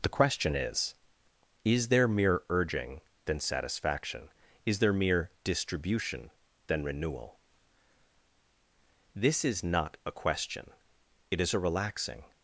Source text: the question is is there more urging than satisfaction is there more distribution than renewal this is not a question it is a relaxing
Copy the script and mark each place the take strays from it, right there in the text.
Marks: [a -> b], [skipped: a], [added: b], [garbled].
the question is is there [more -> mere] urging than satisfaction is there [more -> mere] distribution than renewal this is not a question it is a relaxing